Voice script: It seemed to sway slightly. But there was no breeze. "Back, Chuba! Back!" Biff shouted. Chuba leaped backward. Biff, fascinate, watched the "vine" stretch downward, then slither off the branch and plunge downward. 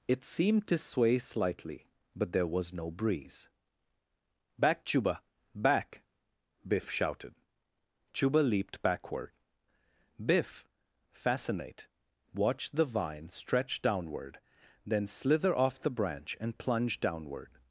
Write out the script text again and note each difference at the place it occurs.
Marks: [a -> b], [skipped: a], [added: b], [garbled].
It seemed to sway slightly. But there was no breeze. "Back, Chuba! Back!" Biff shouted. Chuba leaped backward. Biff, fascinate, watched the "vine" stretch downward, then slither off the branch and plunge downward.